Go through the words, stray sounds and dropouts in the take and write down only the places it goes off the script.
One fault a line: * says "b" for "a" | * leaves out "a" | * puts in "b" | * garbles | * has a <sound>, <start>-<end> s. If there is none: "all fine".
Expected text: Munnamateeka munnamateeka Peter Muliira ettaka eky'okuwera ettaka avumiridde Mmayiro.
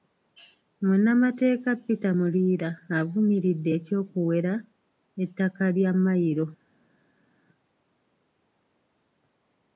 * leaves out "munnamateeka"
* says "avumiridde" for "ettaka"
* says "lya" for "avumiridde"